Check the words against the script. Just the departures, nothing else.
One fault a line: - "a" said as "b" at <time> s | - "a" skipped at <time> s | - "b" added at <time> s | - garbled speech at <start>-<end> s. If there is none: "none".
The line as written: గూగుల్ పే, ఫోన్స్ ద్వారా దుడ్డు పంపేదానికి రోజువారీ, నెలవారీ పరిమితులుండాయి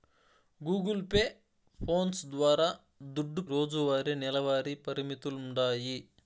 - "పంపేదానికి" skipped at 3.4 s